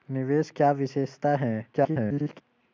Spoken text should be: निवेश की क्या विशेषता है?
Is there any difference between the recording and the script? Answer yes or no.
yes